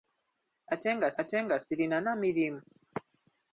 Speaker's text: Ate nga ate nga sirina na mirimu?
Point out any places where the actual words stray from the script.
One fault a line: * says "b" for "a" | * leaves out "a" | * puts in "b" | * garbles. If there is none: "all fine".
all fine